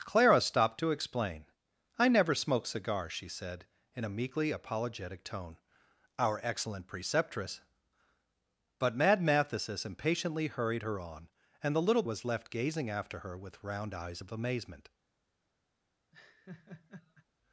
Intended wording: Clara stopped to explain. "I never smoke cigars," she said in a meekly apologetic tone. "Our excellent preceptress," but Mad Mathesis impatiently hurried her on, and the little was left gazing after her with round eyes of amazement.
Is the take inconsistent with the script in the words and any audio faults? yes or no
yes